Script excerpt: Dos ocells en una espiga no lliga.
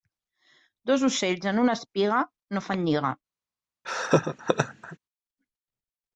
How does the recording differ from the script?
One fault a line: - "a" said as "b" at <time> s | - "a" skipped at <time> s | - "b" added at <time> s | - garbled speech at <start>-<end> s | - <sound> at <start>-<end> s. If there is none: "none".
- "fan" added at 2.7 s
- laugh at 3.8-5.0 s